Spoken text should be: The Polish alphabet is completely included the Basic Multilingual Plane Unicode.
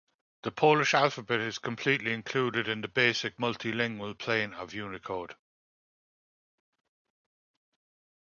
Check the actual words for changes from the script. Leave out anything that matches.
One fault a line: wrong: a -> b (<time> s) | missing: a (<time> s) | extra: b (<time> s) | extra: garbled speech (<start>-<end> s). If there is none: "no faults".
extra: in (2.7 s)
extra: of (4.5 s)